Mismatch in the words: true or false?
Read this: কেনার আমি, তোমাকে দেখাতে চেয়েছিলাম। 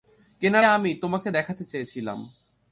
false